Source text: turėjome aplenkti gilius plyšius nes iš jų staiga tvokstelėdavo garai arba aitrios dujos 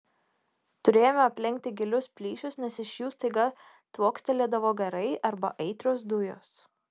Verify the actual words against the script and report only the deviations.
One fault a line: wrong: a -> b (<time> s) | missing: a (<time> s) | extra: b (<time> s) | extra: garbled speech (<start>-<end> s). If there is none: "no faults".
no faults